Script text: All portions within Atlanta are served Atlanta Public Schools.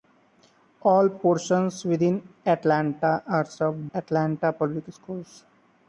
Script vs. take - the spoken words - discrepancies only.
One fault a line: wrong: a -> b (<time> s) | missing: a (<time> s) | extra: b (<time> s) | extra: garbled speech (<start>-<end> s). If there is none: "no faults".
no faults